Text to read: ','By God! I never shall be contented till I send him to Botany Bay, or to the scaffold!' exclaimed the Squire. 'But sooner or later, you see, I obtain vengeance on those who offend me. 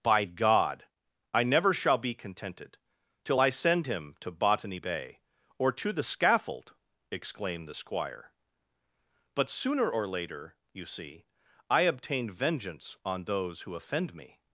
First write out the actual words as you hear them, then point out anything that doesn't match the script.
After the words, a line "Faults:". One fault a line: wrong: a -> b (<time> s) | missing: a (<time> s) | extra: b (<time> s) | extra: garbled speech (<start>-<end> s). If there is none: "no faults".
','By God! I never shall be contented till I send him to Botany Bay, or to the scaffold!' exclaimed the Squire. 'But sooner or later, you see, I obtain vengeance on those who offend me.
Faults:
no faults